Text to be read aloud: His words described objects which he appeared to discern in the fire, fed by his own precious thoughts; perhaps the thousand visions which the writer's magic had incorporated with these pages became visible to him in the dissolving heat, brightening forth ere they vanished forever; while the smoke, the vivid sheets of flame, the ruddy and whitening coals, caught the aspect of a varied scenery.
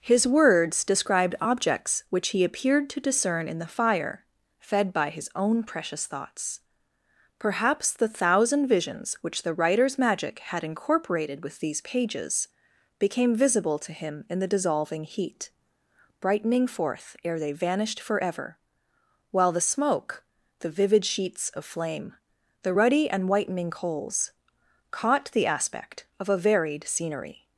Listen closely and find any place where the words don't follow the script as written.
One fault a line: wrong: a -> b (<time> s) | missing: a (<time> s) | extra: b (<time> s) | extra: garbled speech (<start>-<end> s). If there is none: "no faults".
no faults